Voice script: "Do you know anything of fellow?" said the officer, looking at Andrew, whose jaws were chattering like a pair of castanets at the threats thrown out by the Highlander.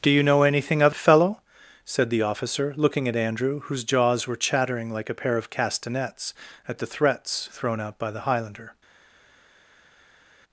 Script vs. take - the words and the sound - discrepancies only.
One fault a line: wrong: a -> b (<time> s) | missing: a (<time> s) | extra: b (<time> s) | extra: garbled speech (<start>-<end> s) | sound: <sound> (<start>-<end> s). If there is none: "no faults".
no faults